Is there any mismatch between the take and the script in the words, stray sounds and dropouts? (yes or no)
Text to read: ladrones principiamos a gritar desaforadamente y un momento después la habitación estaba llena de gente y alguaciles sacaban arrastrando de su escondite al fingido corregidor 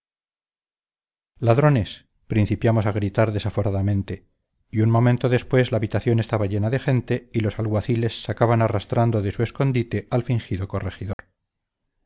yes